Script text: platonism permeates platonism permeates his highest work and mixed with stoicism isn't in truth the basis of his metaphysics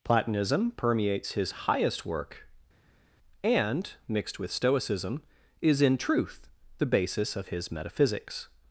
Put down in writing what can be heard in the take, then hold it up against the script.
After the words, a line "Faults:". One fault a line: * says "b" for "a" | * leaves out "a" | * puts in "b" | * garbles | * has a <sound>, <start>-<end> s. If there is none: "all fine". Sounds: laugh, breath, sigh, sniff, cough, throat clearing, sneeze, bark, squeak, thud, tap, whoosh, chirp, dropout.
platonism permeates his highest work and mixed with stoicism is in truth the basis of his metaphysics
Faults:
* leaves out "platonism permeates"
* says "is" for "isn't"